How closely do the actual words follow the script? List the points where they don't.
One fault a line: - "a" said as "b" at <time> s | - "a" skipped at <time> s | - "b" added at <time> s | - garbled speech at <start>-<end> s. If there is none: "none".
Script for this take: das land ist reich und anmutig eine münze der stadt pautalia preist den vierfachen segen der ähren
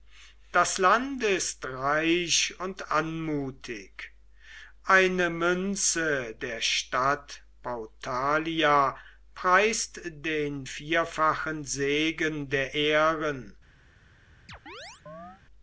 none